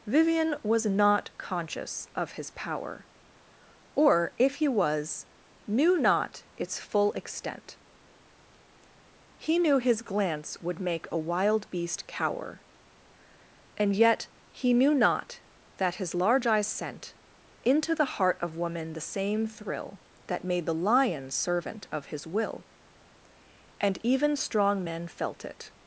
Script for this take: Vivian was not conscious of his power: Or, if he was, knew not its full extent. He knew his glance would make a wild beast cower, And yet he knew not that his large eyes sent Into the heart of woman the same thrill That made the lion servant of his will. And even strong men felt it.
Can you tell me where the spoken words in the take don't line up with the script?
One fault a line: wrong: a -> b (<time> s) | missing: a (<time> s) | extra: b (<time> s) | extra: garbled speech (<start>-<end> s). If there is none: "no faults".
no faults